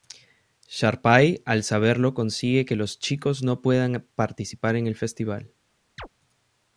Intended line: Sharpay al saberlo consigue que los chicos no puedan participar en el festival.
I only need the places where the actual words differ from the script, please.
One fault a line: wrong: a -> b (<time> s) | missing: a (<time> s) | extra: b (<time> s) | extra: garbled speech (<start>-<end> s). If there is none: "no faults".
no faults